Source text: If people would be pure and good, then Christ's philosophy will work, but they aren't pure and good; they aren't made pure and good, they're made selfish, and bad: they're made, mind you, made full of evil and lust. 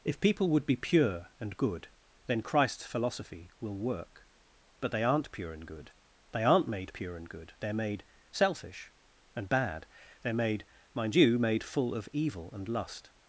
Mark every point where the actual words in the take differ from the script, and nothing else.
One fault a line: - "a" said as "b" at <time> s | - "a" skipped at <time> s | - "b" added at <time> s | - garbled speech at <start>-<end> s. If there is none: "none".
none